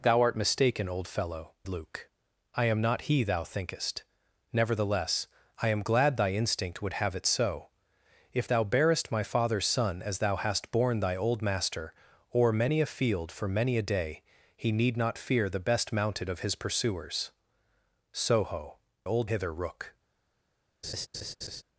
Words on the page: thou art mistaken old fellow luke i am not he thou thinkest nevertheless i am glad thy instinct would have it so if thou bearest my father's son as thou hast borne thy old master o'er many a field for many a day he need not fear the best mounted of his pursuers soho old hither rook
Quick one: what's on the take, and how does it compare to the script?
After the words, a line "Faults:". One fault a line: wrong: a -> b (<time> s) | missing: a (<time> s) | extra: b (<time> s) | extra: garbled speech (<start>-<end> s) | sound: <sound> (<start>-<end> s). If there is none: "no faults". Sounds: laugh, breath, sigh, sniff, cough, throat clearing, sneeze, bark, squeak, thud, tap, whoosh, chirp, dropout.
thou art mistaken old fellow luke i am not he thou thinkest nevertheless i am glad thy instinct would have it so if thou bearest my father's son as thou hast borne thy old master o'er many a field for many a day he need not fear the best mounted of his pursuers soho old hither rook
Faults:
sound: laugh (20.8-21.6 s)